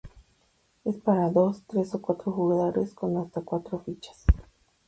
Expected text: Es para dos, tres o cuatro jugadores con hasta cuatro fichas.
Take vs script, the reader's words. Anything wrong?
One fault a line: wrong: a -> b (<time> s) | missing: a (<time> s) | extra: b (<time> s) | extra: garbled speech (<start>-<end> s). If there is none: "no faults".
no faults